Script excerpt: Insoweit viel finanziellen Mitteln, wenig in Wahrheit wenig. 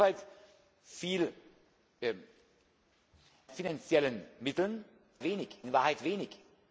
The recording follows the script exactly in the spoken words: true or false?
true